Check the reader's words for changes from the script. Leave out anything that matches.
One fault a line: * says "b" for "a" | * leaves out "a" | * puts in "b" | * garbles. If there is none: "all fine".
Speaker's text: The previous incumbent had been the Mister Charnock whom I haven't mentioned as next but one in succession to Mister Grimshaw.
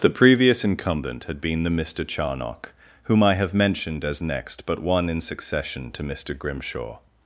* says "have" for "haven't"